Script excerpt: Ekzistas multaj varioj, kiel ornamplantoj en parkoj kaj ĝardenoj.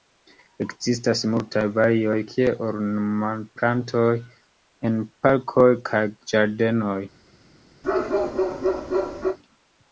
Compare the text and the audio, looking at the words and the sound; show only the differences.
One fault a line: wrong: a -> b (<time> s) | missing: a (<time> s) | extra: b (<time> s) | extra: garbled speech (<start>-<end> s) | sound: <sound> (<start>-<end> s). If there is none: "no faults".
sound: bark (7.8-9.4 s)